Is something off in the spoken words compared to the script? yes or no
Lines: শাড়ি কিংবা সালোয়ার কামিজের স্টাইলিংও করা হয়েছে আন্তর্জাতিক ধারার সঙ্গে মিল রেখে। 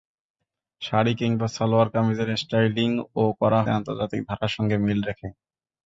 yes